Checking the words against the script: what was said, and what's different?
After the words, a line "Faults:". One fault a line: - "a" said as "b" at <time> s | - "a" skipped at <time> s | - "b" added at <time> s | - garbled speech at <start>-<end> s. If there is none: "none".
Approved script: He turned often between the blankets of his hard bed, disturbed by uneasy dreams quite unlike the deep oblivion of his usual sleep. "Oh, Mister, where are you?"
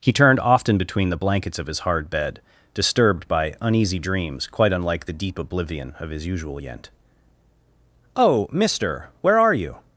He turned often between the blankets of his hard bed, disturbed by uneasy dreams quite unlike the deep oblivion of his usual yent. "Oh, Mister, where are you?"
Faults:
- "sleep" said as "yent" at 6.6 s